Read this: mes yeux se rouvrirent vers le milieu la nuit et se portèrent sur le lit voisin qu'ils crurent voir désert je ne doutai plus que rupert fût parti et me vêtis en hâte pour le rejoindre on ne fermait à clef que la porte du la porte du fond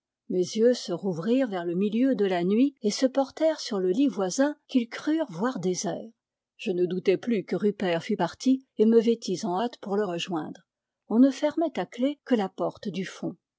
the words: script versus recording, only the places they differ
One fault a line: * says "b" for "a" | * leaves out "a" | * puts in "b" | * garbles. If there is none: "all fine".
* puts in "de"
* leaves out "la porte du"